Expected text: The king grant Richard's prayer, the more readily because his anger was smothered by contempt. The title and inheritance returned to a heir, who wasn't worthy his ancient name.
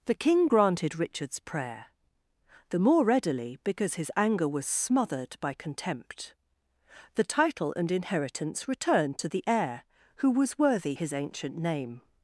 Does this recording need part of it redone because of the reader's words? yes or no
yes